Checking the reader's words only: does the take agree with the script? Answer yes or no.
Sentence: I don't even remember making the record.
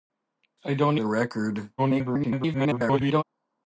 no